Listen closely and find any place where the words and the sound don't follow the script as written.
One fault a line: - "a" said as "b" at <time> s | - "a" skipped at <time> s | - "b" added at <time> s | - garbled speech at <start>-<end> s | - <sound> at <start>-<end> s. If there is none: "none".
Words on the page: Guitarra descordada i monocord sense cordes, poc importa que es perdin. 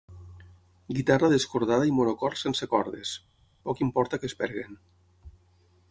none